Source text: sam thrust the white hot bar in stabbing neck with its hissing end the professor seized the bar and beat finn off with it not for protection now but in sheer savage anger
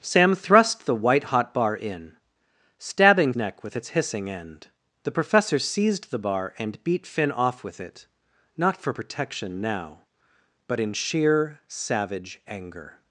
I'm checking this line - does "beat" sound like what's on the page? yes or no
yes